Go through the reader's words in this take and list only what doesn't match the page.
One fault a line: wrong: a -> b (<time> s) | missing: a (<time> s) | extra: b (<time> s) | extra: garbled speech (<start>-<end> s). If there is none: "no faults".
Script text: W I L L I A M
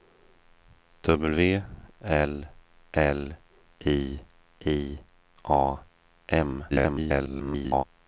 wrong: I -> L (2.0 s)
wrong: L -> I (3.9 s)
extra: garbled speech (6.7-7.8 s)